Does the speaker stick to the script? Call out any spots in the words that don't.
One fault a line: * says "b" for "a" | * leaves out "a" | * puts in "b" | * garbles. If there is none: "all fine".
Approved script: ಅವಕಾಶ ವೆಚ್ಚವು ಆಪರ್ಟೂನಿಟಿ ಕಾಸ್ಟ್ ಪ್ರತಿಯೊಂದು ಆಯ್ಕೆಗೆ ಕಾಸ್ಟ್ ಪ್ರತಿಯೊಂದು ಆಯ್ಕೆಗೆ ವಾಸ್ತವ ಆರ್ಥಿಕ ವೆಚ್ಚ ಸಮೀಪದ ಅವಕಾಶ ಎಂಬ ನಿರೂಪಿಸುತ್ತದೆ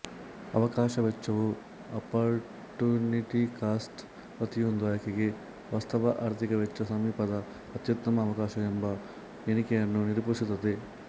* leaves out "ಕಾಸ್ಟ್ ಪ್ರತಿಯೊಂದು ಆಯ್ಕೆಗೆ"
* puts in "ಅತ್ಯುತ್ತಮ"
* puts in "ಎಣಿಕೆಯನ್ನು"